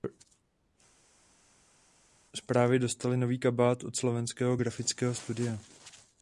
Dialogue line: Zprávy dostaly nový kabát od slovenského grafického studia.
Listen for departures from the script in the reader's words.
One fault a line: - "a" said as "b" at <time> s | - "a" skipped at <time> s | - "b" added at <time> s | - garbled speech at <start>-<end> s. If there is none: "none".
none